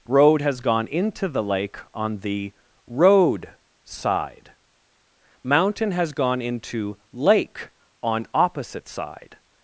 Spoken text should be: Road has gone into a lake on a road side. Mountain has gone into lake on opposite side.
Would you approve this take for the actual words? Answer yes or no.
no